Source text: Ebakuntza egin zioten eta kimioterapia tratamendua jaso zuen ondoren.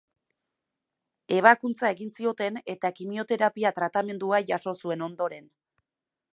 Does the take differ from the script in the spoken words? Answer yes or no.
no